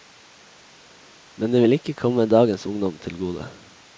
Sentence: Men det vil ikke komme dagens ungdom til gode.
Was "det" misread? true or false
false